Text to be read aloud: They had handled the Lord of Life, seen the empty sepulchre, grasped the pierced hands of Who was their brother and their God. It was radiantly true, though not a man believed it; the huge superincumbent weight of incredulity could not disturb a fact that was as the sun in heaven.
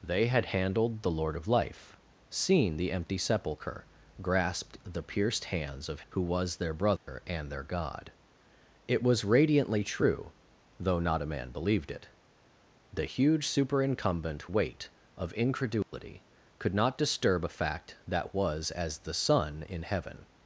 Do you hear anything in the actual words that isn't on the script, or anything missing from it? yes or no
no